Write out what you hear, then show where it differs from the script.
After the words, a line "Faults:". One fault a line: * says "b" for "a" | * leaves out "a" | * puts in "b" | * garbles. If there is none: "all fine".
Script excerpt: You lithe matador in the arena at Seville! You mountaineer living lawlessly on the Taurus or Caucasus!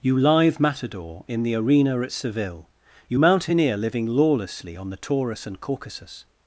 You lithe matador in the arena at Seville! You mountaineer living lawlessly on the Taurus and Caucasus!
Faults:
* says "and" for "or"